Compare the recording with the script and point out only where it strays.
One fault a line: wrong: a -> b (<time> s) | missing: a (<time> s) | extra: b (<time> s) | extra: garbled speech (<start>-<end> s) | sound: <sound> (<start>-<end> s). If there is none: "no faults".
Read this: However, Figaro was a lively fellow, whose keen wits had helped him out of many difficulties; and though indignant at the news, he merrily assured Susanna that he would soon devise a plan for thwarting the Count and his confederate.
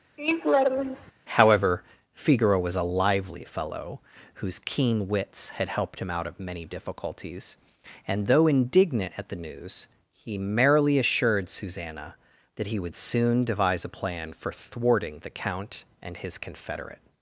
sound: laugh (0.2-1.1 s)